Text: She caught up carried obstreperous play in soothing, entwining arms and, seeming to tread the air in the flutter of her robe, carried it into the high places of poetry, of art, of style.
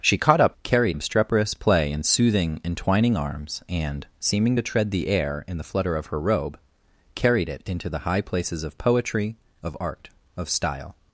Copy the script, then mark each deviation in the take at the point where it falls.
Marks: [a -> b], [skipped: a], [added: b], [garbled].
She caught up carried obstreperous play in soothing, entwining arms and, seeming to tread the air in the flutter of her robe, carried it into the high places of poetry, of art, of style.